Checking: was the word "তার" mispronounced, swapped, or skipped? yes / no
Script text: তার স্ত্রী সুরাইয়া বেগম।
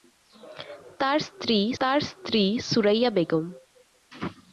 no